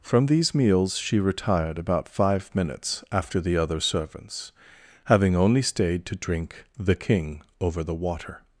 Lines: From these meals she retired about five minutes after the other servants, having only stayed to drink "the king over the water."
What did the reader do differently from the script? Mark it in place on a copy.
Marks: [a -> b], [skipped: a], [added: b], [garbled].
From these meals she retired about five minutes after the other servants, having only stayed to drink "the king over the water."